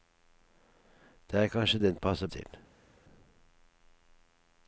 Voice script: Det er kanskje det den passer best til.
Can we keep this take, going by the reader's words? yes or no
no